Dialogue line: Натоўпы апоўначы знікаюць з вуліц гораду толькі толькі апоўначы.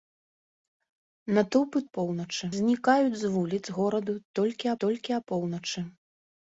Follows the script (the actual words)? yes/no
yes